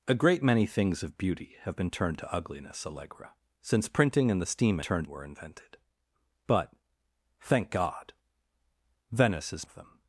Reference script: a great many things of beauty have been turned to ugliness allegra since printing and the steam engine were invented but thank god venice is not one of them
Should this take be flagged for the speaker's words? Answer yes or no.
yes